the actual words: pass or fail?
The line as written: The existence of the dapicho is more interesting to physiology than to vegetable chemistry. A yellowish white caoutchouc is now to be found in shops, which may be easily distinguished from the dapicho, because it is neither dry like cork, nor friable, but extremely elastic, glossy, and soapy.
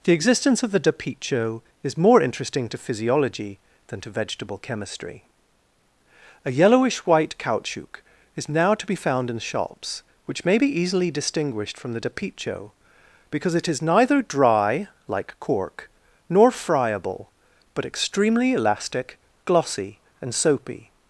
pass